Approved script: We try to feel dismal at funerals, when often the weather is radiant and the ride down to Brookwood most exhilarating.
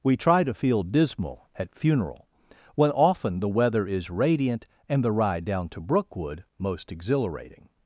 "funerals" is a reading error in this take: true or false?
true